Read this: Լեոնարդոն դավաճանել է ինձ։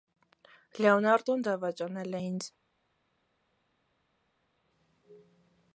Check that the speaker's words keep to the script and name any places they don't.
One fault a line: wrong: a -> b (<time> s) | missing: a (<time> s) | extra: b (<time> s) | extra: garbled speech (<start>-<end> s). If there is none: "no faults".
no faults